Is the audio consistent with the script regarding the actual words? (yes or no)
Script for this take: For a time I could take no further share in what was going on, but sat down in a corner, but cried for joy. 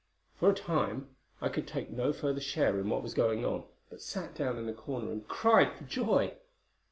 no